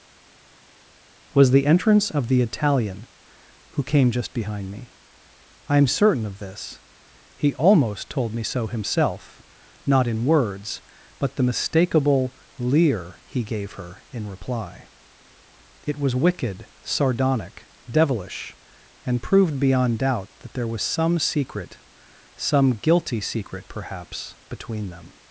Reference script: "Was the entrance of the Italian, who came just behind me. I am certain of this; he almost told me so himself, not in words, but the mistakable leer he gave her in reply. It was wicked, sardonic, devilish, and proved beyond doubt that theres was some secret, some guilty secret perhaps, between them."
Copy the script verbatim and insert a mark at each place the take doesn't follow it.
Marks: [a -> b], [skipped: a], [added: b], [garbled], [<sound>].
"Was the entrance of the Italian, who came just behind me. I am certain of this; he almost told me so himself, not in words, but the mistakable leer he gave her in reply. It was wicked, sardonic, devilish, and proved beyond doubt that [theres -> there] was some secret, some guilty secret perhaps, between them."